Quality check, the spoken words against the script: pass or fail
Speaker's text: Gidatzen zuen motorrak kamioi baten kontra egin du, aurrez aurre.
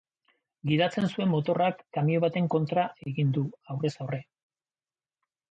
pass